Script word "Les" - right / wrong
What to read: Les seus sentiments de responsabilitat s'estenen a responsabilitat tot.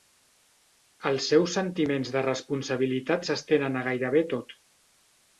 wrong